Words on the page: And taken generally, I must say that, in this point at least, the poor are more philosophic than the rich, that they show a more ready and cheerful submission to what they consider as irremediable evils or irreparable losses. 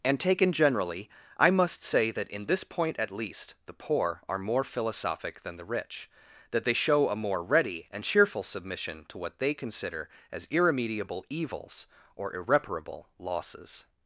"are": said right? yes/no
yes